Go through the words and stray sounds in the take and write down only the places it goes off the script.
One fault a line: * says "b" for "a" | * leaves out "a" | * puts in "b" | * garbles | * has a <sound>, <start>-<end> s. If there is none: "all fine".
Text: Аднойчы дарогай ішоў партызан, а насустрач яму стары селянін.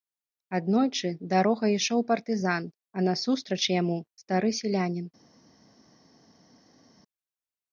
all fine